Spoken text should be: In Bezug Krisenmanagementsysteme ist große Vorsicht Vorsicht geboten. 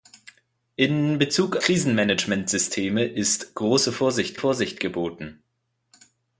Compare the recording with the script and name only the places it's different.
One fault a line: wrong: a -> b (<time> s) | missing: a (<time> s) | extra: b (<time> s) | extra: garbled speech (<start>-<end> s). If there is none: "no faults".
no faults